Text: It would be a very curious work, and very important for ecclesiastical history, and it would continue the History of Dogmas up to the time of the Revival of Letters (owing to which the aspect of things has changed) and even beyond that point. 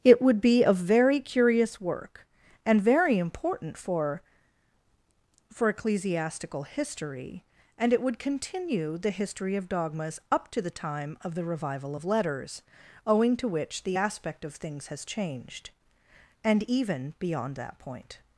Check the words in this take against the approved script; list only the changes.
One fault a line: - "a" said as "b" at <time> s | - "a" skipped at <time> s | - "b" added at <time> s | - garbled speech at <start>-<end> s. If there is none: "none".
- "for" added at 5.5 s